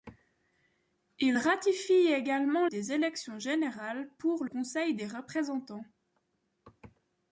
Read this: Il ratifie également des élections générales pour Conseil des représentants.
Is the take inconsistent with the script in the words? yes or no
no